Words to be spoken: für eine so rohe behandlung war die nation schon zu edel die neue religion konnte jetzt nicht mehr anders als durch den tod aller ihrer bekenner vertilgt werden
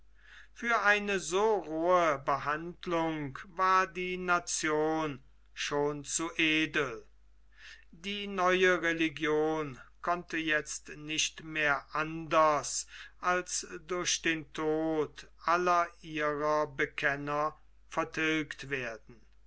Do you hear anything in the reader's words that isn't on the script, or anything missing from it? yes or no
no